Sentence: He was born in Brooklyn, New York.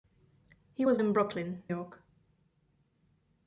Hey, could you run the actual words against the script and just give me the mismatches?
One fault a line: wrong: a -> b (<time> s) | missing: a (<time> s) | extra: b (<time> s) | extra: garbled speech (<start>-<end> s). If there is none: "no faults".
missing: born (1.0 s)
missing: New (1.6 s)